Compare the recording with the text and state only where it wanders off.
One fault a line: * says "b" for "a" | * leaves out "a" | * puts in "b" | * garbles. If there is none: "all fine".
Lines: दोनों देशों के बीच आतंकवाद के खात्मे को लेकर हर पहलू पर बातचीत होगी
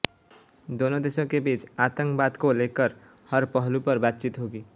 * leaves out "के खात्मे"